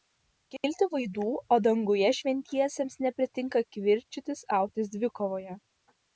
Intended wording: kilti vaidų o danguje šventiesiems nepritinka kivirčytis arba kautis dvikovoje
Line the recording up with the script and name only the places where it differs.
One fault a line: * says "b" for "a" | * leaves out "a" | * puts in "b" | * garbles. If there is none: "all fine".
* leaves out "arba"